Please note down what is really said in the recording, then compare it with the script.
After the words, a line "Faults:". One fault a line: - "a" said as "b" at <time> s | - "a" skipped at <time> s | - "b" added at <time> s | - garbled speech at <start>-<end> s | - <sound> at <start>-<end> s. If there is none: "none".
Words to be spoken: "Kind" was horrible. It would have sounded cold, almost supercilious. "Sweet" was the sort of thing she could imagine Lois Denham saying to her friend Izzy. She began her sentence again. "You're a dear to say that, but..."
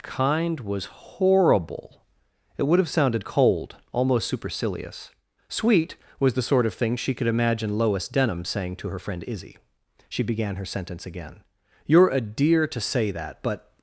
"Kind" was horrible. It would have sounded cold, almost supercilious. "Sweet" was the sort of thing she could imagine Lois Denham saying to her friend Izzy. She began her sentence again. "You're a dear to say that, but..."
Faults:
none